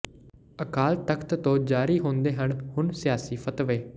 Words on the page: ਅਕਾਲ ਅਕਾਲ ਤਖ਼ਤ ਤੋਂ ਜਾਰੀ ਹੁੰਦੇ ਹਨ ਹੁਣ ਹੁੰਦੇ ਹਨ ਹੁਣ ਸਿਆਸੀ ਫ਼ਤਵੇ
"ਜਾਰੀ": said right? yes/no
yes